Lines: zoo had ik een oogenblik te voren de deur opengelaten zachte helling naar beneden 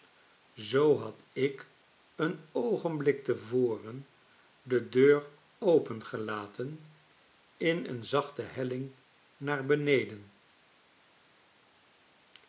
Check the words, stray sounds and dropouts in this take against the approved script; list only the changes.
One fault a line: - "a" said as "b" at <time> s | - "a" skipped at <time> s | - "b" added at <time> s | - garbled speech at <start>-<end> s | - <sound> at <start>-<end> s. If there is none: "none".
- "in een" added at 7.6 s